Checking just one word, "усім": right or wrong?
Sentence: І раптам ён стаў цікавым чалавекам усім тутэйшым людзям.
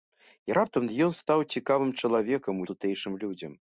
wrong